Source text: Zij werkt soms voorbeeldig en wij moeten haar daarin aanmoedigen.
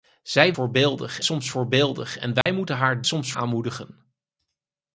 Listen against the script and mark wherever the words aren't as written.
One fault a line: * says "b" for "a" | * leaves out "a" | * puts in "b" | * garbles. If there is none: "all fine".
* says "voorbeeldig" for "werkt"
* says "soms" for "daarin"